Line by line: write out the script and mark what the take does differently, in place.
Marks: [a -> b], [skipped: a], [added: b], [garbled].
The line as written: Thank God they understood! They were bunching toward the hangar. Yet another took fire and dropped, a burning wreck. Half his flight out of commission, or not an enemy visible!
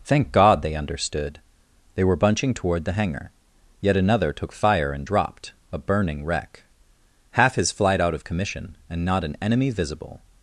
Thank God they understood! They were bunching toward the hangar. Yet another took fire and dropped, a burning wreck. Half his flight out of commission, [or -> and] not an enemy visible!